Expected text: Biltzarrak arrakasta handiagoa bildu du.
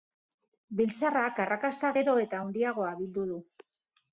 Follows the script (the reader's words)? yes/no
no